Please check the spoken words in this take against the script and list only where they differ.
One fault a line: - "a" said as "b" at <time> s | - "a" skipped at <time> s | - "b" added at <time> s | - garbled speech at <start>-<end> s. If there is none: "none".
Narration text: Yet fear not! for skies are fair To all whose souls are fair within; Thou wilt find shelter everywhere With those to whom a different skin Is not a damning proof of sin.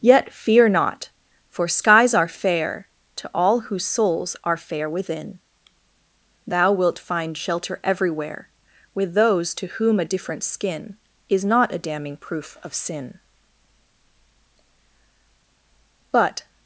- "But" added at 16.1 s